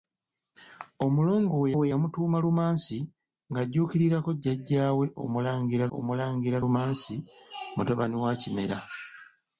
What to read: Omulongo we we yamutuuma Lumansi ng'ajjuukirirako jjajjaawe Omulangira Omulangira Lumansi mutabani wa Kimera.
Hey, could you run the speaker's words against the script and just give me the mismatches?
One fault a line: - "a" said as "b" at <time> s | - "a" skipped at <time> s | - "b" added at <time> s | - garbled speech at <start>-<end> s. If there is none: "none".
none